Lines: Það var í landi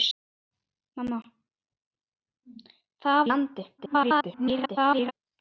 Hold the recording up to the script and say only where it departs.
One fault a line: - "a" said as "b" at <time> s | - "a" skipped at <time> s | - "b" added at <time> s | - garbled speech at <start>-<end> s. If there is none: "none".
- "var" skipped at 3.2 s
- garbled speech at 3.8-5.1 s